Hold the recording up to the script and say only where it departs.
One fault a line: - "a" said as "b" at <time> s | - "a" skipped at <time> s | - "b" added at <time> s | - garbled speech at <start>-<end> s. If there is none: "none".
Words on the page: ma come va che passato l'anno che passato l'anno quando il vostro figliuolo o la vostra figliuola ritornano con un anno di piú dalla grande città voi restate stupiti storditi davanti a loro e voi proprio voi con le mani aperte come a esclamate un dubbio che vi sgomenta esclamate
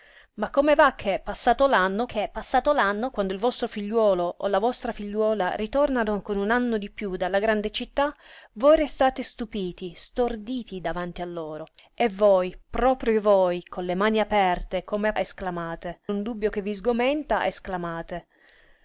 none